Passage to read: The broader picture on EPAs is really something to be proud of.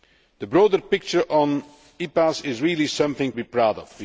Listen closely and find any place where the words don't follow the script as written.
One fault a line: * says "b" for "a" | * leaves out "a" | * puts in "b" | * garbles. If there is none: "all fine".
* leaves out "to"